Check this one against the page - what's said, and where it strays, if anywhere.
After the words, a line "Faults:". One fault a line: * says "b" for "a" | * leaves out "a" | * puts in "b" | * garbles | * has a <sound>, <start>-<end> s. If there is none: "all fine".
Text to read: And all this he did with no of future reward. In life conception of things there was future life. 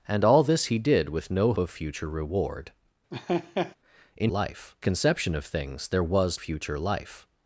And all this he did with no of future reward. In life conception of things there was future life.
Faults:
* has a laugh, 3.1-3.8 s